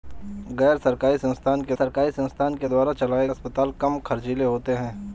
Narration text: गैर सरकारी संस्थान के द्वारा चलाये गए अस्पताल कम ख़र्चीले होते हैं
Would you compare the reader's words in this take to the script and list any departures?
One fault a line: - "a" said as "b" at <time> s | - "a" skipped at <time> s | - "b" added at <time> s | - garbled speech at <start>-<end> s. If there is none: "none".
- "सरकारी संस्थान के" added at 1.7 s
- "गए" skipped at 3.3 s